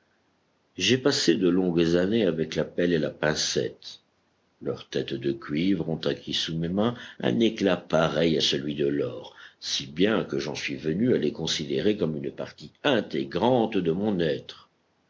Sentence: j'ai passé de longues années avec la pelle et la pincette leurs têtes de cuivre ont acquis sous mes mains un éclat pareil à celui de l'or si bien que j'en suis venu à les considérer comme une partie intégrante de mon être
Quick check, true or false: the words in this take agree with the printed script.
true